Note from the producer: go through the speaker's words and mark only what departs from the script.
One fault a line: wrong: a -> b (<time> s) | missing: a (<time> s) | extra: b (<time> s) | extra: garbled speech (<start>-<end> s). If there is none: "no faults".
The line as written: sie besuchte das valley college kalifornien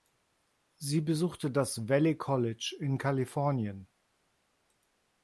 extra: in (2.8 s)